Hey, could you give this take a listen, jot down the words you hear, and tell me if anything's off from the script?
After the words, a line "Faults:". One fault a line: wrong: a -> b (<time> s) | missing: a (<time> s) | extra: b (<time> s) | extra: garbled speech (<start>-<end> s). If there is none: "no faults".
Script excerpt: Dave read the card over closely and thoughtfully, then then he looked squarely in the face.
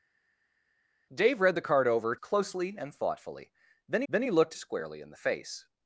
Dave read the card over closely and thoughtfully, then then he looked squarely in the face.
Faults:
no faults